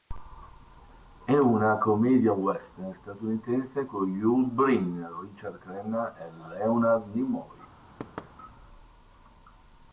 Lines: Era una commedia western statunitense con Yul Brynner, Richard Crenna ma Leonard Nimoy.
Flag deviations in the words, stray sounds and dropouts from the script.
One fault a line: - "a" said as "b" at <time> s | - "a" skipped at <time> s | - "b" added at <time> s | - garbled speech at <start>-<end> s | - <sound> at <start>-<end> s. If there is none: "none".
- "Era" said as "È" at 1.2 s
- "ma" said as "e" at 6.2 s
- thud at 8.0-8.3 s